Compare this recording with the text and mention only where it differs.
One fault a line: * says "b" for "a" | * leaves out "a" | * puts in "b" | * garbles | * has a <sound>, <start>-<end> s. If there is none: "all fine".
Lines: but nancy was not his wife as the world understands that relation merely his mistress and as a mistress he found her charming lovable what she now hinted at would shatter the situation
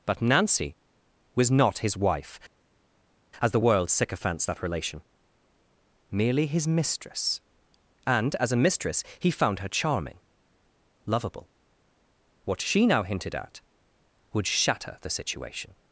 * says "sycophants" for "understands"